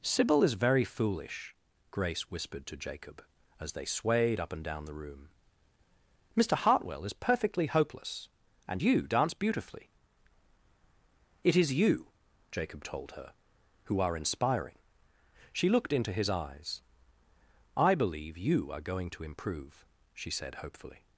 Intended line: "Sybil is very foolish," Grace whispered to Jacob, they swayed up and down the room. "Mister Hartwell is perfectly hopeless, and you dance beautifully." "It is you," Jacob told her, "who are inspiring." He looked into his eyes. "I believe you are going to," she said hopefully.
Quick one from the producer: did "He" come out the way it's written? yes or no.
no